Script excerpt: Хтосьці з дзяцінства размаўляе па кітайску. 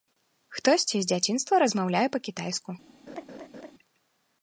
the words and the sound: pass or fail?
fail